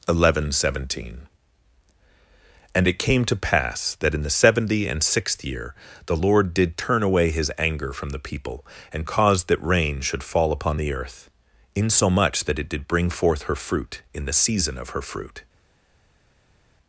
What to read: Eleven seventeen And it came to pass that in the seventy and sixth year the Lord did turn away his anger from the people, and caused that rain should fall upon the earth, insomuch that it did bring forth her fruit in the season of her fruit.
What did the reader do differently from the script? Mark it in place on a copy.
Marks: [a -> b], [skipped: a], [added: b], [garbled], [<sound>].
Eleven seventeen And it came to pass that in the seventy and sixth year the Lord did turn away his anger from the people, and caused that rain should fall upon the earth, insomuch that it did bring forth her fruit in the season of her fruit.